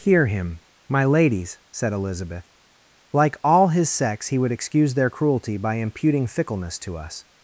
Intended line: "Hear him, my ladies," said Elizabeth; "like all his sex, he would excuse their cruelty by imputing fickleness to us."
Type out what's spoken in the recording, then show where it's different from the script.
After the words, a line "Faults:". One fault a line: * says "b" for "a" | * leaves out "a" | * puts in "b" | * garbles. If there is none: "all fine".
"Hear him, my ladies," said Elizabeth; "like all his sex, he would excuse their cruelty by imputing fickleness to us."
Faults:
all fine